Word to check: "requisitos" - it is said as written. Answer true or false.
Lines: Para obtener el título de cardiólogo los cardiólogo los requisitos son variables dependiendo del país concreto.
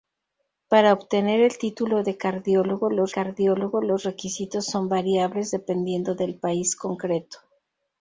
true